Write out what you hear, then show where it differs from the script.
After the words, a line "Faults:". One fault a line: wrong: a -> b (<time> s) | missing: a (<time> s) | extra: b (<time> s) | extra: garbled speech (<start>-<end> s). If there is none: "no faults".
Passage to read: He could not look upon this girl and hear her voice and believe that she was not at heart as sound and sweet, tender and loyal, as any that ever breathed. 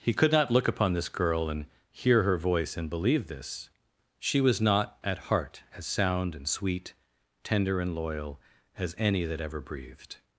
He could not look upon this girl and hear her voice and believe this she was not at heart as sound and sweet, tender and loyal, as any that ever breathed.
Faults:
wrong: that -> this (3.3 s)